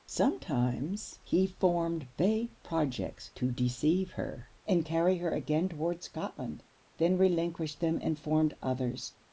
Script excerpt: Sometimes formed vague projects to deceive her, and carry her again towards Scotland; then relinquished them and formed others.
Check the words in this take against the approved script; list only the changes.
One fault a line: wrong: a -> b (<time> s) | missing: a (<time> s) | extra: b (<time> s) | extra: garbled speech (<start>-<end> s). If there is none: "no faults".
extra: he (1.2 s)